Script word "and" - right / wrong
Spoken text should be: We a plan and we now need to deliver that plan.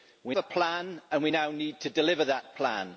right